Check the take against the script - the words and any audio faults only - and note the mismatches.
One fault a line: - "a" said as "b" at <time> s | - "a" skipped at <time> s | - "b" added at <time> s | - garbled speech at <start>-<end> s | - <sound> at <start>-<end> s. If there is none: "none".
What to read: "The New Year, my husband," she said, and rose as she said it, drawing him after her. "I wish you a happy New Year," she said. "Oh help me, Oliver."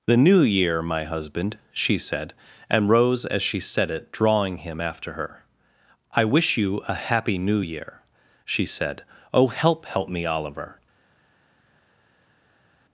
- "help" added at 9.9 s